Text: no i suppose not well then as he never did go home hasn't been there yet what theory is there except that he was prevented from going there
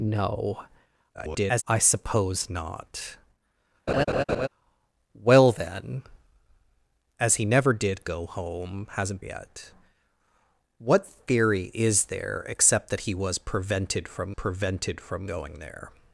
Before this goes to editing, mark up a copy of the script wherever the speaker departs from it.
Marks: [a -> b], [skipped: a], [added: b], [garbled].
no [garbled] i suppose not well then as he never did go home hasn't [skipped: been there] yet what theory is there except that he was prevented from [added: prevented from] going there